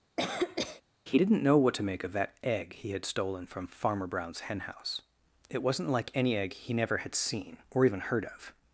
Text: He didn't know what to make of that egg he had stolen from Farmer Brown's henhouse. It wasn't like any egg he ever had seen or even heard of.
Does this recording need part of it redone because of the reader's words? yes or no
yes